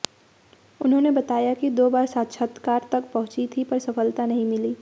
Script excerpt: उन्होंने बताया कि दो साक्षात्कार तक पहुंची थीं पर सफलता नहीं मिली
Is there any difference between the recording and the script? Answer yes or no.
yes